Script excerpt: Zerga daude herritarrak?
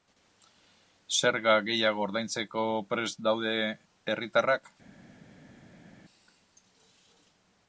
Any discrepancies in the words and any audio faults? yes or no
yes